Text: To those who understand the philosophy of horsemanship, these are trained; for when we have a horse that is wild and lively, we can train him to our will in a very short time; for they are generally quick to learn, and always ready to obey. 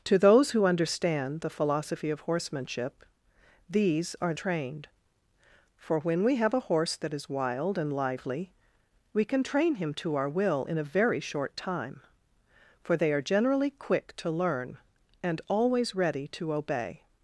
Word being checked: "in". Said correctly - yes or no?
yes